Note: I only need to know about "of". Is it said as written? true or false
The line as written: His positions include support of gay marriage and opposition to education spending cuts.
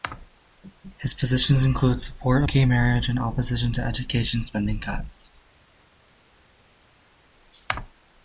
false